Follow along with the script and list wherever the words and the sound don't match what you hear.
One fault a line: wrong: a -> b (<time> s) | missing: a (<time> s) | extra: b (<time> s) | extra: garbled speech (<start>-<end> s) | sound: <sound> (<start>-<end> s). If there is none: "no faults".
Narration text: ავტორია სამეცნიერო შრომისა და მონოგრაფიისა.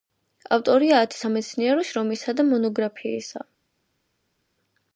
extra: ათი (1.1 s)